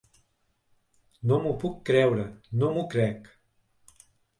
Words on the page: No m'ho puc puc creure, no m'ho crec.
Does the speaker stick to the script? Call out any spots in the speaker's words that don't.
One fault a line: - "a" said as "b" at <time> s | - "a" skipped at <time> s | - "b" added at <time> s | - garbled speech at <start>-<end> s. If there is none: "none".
- "puc" skipped at 1.8 s